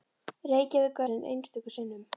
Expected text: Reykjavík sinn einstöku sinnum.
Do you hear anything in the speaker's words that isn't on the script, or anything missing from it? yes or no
no